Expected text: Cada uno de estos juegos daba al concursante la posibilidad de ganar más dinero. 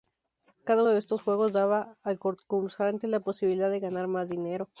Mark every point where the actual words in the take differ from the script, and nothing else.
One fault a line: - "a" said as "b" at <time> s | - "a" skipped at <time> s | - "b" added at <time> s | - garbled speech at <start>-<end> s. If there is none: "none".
- "uno" skipped at 0.8 s